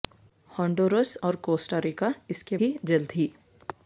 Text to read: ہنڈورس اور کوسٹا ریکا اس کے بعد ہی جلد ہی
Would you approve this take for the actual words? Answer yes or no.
no